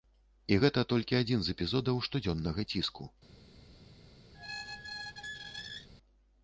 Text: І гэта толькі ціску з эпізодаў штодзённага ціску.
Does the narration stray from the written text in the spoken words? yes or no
yes